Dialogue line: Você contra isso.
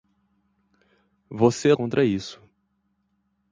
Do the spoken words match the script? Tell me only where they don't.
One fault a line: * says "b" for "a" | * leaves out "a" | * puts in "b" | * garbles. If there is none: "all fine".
all fine